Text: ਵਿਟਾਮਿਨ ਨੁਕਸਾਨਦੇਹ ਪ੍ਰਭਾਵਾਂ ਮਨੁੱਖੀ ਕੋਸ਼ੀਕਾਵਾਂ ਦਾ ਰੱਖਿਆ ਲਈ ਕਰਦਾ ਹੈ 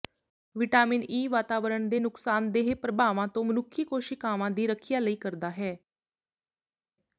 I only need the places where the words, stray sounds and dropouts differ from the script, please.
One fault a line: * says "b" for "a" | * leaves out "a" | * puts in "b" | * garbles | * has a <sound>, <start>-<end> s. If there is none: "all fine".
* puts in "ਈ ਵਾਤਾਵਰਣ ਦੇ"
* puts in "ਤੋਂ"
* says "ਦੀ" for "ਦਾ"